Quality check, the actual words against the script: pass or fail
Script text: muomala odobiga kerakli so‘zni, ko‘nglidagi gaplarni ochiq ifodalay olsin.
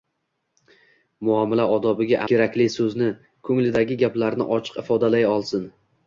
pass